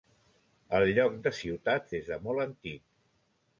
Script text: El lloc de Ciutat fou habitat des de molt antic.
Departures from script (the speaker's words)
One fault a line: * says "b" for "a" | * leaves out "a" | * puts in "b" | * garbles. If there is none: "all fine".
* leaves out "fou habitat"